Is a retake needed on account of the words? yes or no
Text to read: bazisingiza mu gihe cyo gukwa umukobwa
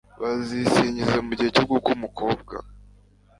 no